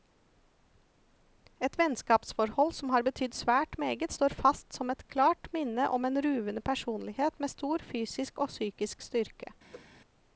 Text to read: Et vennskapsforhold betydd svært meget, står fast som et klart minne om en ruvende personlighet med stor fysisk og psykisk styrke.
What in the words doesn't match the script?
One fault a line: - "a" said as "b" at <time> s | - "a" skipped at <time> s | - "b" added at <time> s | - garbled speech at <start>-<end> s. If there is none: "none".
- "som har" added at 2.7 s